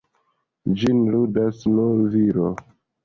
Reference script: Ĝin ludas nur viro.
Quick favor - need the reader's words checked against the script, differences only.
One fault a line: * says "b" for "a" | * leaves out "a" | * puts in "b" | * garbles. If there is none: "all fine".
all fine